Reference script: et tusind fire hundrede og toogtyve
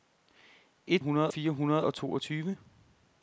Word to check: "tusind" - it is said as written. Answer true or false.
false